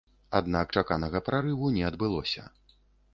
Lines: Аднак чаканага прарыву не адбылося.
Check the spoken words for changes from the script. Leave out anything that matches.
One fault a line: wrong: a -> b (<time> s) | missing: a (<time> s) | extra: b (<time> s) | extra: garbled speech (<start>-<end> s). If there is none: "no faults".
no faults